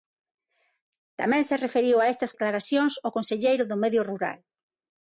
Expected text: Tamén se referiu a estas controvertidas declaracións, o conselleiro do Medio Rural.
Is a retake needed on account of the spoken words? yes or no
yes